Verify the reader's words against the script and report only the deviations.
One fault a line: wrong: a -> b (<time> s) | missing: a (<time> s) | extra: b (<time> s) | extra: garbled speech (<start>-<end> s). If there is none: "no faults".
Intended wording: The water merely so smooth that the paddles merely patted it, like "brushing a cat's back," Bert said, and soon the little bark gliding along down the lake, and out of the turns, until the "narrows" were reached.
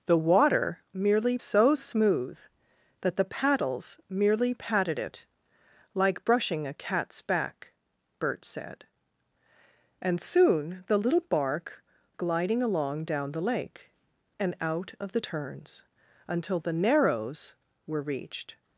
no faults